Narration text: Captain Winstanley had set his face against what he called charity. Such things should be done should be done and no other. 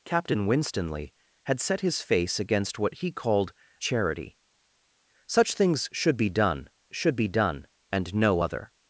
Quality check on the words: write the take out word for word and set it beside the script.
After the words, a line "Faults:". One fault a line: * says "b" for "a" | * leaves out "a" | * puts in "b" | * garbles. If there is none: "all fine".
Captain Winstanley had set his face against what he called charity. Such things should be done should be done and no other.
Faults:
all fine